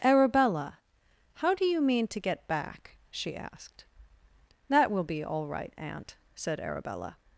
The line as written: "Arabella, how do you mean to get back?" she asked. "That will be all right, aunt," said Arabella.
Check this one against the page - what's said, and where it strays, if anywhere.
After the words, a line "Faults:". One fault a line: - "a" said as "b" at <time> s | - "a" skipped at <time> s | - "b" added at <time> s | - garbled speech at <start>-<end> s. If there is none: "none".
"Arabella, how do you mean to get back?" she asked. "That will be all right, aunt," said Arabella.
Faults:
none